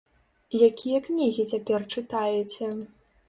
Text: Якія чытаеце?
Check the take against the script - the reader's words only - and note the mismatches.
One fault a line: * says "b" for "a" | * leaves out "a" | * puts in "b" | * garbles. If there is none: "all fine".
* puts in "кнігі цяпер"